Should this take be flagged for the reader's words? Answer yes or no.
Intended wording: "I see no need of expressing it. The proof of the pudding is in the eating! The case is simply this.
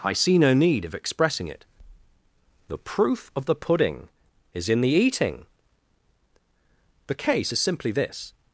no